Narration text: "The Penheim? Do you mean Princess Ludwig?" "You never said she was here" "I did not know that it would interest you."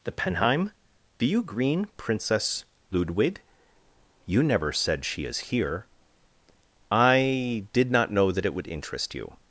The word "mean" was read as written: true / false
false